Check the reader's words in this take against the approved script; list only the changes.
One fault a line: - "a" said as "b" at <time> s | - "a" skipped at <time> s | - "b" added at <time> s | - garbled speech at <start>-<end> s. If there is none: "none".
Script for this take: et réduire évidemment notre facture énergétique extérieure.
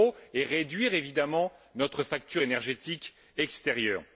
none